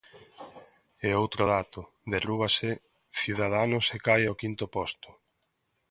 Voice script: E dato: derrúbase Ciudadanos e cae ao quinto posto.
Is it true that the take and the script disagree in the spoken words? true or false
true